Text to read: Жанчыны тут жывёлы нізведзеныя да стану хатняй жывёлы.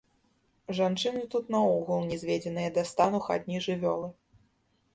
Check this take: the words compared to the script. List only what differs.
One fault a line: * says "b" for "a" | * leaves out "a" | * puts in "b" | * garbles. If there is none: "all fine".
* says "наогул" for "жывёлы"